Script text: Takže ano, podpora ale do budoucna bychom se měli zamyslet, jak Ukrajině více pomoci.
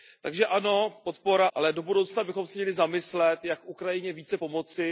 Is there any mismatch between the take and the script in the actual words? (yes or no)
no